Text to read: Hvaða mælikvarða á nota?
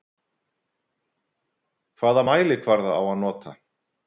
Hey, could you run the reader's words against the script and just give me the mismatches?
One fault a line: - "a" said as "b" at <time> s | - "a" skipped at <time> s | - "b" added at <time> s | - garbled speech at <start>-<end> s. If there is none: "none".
- "að" added at 3.0 s